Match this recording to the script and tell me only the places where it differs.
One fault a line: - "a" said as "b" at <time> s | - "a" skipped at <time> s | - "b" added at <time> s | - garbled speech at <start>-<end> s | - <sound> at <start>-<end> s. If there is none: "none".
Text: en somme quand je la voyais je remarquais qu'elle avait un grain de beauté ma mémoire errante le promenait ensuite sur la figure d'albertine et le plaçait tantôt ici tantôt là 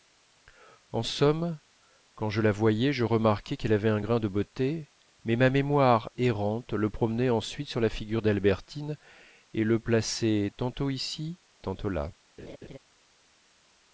- "mais" added at 5.2 s
- laugh at 12.4-12.8 s